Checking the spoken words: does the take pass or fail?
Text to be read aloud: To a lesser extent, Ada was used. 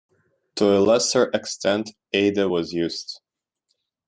pass